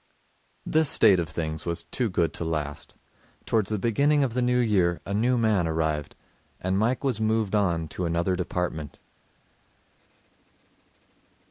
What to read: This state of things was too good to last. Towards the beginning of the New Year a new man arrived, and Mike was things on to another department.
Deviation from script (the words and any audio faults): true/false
true